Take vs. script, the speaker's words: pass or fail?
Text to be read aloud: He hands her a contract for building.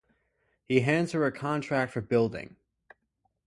pass